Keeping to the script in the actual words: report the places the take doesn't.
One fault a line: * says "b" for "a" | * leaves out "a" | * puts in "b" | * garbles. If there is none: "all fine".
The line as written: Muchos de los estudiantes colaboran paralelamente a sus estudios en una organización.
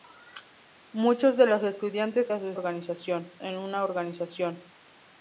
* leaves out "colaboran paralelamente"
* says "organización" for "estudios"